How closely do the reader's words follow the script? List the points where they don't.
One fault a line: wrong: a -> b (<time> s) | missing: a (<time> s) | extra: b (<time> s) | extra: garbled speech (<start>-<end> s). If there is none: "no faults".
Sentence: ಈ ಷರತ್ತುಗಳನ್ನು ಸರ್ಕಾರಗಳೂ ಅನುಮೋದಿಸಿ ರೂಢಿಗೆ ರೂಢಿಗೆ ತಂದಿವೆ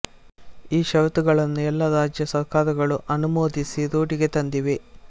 extra: ಎಲ್ಲ ರಾಜ್ಯ (1.6 s)
missing: ರೂಢಿಗೆ (4.3 s)